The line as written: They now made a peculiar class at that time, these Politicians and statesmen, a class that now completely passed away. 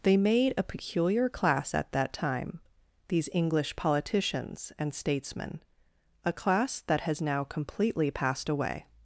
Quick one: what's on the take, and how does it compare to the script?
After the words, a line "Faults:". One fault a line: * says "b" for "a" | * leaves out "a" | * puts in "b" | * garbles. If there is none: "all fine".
They made a peculiar class at that time, these English politicians and statesmen, a class that has now completely passed away.
Faults:
* leaves out "now"
* puts in "English"
* puts in "has"